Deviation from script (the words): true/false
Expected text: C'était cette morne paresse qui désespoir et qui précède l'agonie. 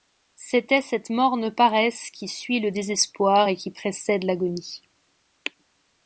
true